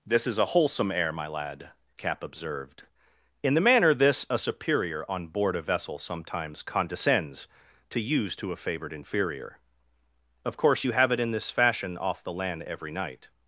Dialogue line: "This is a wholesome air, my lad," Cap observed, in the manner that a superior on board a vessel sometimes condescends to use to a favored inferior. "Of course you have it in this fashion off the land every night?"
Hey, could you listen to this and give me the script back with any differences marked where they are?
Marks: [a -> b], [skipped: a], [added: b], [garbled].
"This is a wholesome air, my lad," Cap observed, in the manner [that -> this] a superior on board a vessel sometimes condescends to use to a favored inferior. "Of course you have it in this fashion off the land every night?"